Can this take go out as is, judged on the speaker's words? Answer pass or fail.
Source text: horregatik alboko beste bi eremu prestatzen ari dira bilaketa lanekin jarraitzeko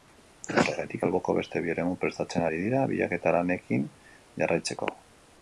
pass